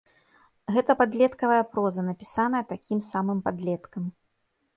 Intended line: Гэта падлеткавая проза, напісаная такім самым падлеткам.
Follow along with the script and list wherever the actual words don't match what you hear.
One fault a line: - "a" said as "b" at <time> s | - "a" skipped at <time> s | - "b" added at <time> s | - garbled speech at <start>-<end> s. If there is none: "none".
none